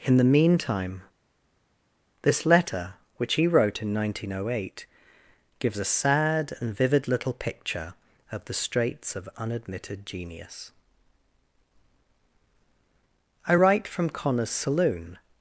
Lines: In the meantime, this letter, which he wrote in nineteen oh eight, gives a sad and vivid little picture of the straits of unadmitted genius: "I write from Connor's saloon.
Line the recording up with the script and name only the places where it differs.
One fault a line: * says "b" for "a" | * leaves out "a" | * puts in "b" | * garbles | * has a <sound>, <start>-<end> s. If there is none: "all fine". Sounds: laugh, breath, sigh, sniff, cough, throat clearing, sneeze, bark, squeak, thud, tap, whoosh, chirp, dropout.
all fine